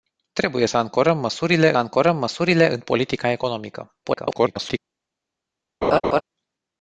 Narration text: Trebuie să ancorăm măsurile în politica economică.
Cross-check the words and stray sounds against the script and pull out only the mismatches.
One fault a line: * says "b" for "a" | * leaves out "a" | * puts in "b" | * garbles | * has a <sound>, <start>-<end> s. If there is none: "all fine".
* puts in "ancorăm măsurile"
* garbles
* has a laugh, 5.8-6.2 s